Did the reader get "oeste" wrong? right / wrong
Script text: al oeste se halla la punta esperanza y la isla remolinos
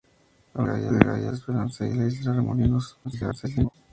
wrong